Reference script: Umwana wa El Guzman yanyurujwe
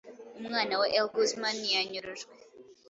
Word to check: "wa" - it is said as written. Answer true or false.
true